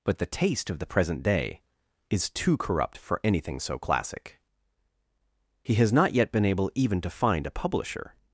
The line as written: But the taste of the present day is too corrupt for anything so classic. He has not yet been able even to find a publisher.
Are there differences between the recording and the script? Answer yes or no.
no